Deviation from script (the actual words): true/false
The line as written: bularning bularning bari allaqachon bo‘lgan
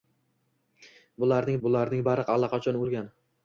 false